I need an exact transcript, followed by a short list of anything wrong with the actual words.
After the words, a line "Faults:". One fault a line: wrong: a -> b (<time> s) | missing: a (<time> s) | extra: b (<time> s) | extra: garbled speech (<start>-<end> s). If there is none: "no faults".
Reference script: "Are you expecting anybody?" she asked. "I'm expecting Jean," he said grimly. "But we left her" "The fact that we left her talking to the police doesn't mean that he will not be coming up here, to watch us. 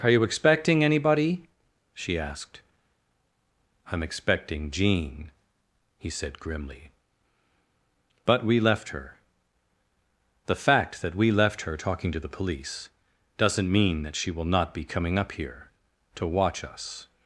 "Are you expecting anybody?" she asked. "I'm expecting Jean," he said grimly. "But we left her" "The fact that we left her talking to the police doesn't mean that she will not be coming up here, to watch us.
Faults:
wrong: he -> she (14.1 s)